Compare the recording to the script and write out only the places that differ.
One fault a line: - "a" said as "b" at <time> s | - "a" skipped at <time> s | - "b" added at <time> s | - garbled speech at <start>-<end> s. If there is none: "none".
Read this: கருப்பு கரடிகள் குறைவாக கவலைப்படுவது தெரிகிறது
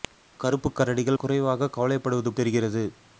none